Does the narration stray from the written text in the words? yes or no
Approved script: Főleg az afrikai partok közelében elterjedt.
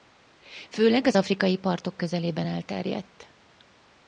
no